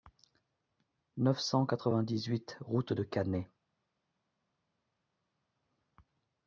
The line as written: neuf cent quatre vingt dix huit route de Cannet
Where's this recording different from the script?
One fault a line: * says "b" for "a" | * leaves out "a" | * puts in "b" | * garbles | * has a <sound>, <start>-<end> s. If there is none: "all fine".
all fine